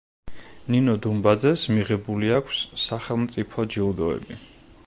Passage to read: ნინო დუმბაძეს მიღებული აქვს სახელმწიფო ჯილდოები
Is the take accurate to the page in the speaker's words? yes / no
yes